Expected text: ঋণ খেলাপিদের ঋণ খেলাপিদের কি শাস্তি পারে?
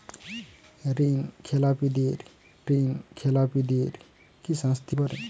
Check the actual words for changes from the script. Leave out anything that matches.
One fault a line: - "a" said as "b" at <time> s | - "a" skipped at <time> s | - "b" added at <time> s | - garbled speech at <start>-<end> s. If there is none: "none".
none